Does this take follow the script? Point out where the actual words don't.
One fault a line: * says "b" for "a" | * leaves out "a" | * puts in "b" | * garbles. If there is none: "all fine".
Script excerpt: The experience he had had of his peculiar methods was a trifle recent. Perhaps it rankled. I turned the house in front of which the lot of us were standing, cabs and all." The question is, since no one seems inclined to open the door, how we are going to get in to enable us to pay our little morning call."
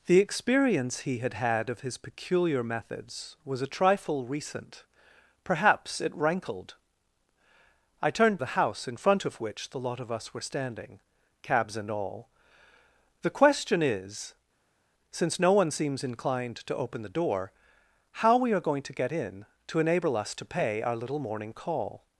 all fine